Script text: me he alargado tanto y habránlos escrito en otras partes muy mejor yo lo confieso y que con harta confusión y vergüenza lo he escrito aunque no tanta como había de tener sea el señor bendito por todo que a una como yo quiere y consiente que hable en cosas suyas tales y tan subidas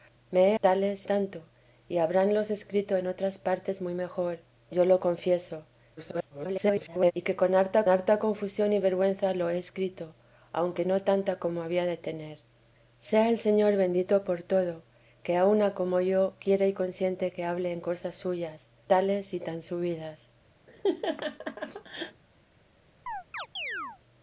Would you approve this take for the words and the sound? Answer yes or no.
no